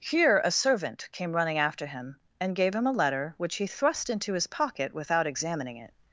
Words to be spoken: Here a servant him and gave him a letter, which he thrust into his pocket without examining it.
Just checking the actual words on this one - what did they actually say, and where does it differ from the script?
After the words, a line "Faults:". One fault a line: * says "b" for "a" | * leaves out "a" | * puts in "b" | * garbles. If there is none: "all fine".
Here a servant came running after him and gave him a letter, which he thrust into his pocket without examining it.
Faults:
* puts in "came running after"